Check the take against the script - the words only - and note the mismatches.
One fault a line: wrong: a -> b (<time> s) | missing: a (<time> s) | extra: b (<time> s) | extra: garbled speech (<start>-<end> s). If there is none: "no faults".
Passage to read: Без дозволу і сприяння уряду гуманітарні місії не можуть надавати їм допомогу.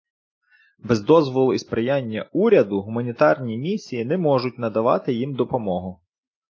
no faults